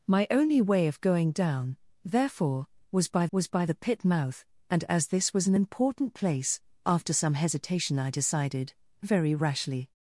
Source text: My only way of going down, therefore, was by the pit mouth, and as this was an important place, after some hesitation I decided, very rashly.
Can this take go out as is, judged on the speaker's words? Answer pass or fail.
fail